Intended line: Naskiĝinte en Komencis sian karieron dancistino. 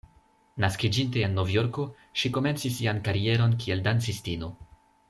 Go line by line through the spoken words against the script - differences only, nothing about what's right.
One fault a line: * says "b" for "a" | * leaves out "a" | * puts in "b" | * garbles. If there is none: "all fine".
* puts in "Novjorko ŝi"
* puts in "kiel"